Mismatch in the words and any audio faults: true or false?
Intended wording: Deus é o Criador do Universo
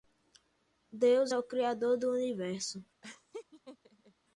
true